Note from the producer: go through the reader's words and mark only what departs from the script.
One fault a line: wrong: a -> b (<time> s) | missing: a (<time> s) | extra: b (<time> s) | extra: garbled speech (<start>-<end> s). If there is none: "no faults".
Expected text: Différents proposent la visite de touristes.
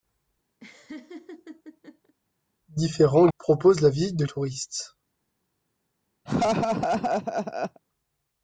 no faults